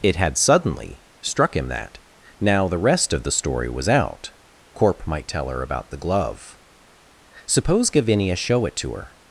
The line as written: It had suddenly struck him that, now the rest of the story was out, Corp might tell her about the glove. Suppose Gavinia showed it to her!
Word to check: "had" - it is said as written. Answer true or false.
true